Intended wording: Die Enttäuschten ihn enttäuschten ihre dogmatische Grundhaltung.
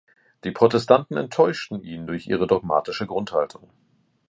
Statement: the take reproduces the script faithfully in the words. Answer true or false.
false